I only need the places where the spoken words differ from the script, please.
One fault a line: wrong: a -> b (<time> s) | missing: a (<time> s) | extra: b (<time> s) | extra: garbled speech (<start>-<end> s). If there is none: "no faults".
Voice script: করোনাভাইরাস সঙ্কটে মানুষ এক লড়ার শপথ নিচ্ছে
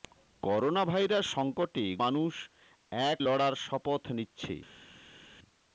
no faults